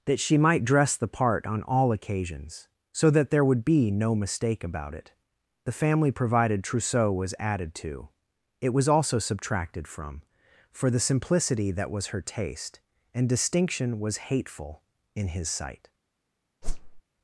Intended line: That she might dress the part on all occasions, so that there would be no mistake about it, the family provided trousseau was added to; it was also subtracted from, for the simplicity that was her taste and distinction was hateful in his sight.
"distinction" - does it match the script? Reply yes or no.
yes